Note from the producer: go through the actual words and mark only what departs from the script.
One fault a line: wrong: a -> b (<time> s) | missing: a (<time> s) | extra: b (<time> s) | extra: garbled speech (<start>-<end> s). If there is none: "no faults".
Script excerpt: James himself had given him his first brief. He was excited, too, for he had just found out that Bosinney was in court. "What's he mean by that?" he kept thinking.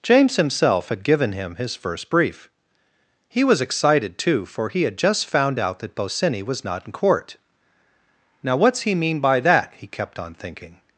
extra: not (6.6 s)
extra: Now (8.4 s)
extra: on (10.2 s)